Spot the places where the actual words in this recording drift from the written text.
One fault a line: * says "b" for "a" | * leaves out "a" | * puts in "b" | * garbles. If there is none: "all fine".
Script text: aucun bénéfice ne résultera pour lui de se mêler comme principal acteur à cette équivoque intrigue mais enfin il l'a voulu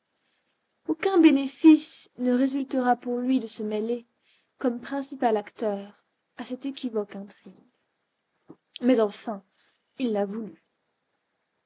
all fine